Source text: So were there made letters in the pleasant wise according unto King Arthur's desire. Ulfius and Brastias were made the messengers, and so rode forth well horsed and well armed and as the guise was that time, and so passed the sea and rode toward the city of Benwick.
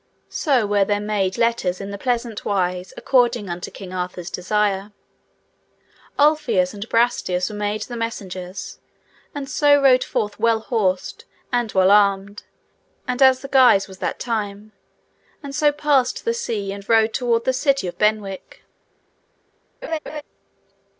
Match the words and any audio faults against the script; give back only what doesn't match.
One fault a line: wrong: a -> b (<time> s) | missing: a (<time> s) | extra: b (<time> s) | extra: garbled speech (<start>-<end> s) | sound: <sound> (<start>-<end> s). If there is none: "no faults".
sound: laugh (19.8-20.2 s)